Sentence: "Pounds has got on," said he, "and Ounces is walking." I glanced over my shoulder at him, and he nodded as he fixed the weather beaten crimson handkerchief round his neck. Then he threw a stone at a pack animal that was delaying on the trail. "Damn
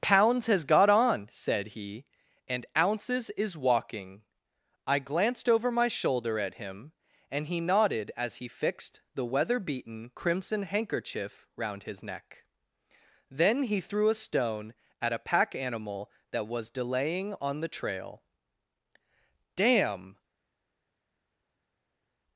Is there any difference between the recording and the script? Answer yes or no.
no